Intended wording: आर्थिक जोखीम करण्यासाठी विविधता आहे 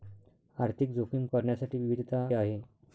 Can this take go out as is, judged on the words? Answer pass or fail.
pass